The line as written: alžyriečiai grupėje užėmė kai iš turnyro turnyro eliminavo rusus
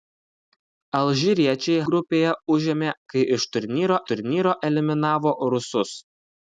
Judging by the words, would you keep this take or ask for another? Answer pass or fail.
pass